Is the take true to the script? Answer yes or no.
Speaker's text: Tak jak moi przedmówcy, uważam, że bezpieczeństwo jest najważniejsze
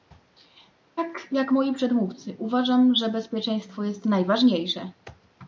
yes